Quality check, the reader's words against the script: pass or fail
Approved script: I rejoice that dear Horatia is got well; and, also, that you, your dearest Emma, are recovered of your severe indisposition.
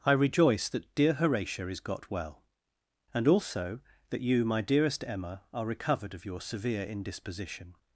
fail